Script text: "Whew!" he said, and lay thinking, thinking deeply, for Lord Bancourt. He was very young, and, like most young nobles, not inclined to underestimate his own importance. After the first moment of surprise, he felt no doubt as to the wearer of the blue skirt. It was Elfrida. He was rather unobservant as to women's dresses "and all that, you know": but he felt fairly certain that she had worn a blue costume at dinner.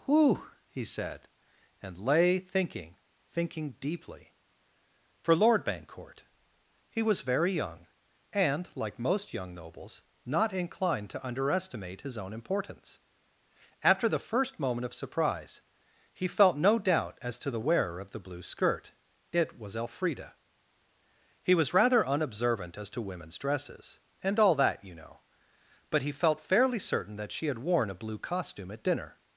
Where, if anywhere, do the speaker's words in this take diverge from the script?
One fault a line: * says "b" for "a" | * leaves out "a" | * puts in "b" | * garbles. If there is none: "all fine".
all fine